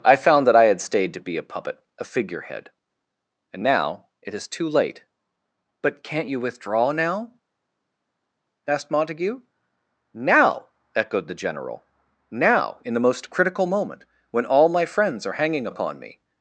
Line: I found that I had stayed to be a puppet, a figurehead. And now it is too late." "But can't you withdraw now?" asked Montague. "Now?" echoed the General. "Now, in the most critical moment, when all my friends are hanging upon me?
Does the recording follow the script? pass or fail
pass